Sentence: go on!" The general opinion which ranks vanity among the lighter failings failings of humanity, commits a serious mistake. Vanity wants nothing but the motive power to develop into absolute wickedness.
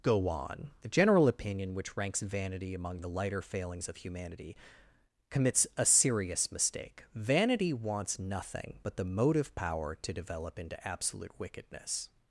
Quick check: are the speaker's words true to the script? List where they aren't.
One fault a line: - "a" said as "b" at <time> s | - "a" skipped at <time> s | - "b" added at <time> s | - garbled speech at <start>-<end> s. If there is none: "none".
- "failings" skipped at 3.9 s